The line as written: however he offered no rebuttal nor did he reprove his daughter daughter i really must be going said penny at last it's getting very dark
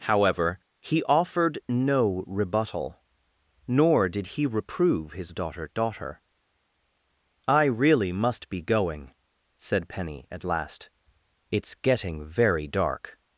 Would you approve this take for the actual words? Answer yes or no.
yes